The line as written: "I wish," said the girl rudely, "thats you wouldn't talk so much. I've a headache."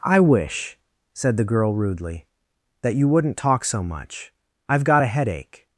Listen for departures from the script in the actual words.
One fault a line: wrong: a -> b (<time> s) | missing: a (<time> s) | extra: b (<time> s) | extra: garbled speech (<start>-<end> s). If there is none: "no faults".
wrong: thats -> that (2.8 s)
extra: got (4.8 s)